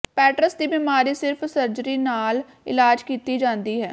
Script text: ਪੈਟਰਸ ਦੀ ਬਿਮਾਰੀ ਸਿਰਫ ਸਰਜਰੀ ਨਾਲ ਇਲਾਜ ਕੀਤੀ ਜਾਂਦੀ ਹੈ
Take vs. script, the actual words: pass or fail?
pass